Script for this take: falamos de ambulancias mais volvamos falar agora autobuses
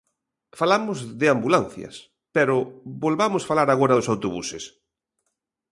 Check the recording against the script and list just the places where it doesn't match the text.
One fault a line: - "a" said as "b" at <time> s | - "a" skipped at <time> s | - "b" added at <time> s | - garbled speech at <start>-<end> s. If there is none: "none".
- "mais" said as "pero" at 2.4 s
- "dos" added at 3.9 s